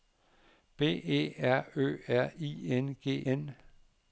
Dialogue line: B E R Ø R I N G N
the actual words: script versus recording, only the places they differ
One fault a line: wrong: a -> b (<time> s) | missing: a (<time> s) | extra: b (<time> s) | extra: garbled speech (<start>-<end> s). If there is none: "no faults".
no faults